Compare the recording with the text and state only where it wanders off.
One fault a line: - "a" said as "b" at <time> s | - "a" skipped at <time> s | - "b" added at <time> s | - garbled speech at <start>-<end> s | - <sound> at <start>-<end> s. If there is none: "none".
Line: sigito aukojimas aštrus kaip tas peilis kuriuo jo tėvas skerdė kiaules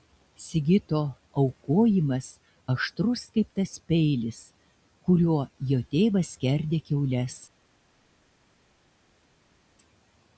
none